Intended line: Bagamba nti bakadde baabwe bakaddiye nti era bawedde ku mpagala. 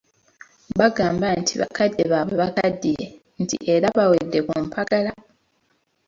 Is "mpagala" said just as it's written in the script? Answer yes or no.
yes